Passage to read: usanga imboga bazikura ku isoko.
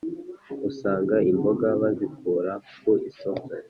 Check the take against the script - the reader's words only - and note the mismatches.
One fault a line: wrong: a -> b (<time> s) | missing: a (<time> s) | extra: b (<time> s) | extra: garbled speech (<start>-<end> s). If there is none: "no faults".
no faults